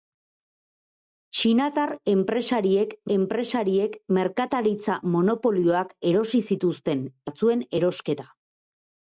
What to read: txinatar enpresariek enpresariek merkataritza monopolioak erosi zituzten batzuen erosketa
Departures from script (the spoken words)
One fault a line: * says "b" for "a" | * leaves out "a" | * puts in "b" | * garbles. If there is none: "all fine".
all fine